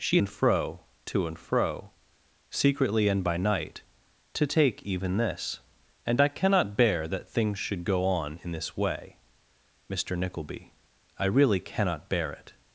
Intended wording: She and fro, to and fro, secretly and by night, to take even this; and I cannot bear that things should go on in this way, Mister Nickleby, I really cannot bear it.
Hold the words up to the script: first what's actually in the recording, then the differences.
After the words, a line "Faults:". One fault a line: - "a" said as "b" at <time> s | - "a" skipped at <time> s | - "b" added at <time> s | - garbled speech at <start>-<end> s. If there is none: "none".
She and fro, to and fro, secretly and by night, to take even this; and I cannot bear that things should go on in this way, Mister Nickleby, I really cannot bear it.
Faults:
none